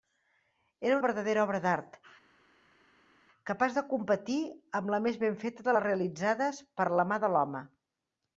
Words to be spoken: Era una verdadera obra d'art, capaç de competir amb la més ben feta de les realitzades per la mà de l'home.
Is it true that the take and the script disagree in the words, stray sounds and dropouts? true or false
true